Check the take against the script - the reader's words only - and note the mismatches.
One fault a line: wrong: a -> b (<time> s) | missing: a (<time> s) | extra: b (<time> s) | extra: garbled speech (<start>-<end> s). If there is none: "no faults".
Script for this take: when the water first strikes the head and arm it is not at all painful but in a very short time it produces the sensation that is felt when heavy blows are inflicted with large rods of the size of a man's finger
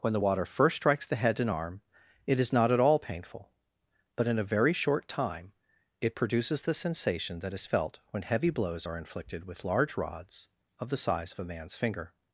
no faults